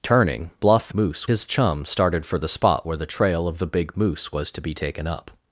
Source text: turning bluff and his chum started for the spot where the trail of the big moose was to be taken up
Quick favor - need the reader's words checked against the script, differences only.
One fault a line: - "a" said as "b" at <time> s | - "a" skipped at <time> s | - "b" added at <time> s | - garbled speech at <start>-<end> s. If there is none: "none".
- "and" said as "moose" at 0.9 s